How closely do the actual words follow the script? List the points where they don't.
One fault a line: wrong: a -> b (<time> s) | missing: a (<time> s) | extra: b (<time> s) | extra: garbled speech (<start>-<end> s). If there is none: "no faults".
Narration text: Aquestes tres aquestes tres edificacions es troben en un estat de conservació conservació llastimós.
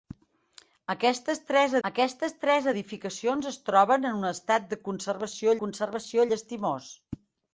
no faults